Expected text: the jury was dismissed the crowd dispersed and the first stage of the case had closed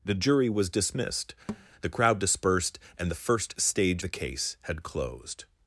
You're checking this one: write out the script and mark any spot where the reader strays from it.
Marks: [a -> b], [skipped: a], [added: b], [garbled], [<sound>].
the jury was dismissed [thud] the crowd dispersed and the first stage [skipped: of] the case had closed